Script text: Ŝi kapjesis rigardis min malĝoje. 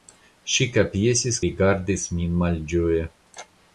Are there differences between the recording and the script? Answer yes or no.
no